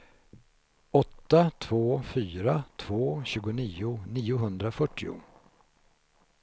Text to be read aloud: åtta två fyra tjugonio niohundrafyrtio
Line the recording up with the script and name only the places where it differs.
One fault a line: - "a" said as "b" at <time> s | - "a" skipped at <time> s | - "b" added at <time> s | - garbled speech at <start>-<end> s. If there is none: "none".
- "två" added at 2.8 s